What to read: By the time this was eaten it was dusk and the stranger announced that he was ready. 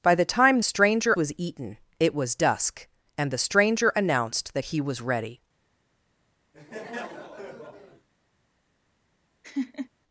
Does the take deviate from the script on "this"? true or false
true